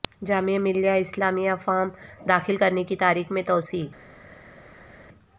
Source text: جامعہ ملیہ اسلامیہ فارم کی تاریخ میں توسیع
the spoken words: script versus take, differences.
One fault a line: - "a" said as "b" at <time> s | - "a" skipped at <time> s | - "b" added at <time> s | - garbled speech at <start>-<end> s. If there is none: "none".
- "داخل کرنے" added at 2.3 s